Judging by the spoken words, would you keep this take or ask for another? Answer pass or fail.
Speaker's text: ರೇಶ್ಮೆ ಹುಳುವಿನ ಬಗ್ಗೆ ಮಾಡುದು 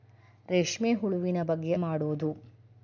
pass